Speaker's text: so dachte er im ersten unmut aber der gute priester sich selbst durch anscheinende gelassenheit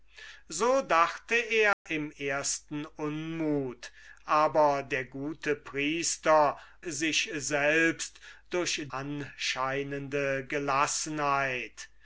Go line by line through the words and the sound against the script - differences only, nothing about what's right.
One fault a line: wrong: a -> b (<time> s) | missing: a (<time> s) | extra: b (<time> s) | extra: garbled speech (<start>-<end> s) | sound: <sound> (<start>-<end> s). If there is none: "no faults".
sound: dropout (1.7-1.9 s)